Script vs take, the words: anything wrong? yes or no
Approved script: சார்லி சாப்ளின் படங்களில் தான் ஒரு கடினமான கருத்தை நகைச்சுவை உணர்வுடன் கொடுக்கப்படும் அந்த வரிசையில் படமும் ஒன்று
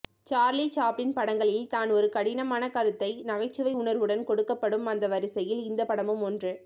yes